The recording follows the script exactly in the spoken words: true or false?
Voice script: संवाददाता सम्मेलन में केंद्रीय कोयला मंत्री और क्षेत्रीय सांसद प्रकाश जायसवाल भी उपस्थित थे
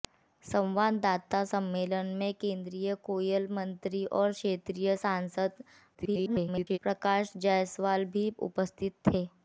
false